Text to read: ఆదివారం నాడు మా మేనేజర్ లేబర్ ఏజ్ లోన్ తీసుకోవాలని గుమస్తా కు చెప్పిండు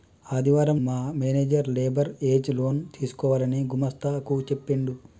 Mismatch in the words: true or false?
true